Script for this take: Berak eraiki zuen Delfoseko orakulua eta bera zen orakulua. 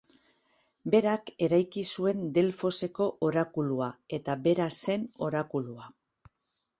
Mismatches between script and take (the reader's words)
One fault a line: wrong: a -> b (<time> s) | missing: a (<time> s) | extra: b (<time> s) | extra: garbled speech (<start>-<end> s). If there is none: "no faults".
no faults